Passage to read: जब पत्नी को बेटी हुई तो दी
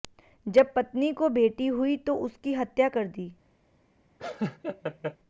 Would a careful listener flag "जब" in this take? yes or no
no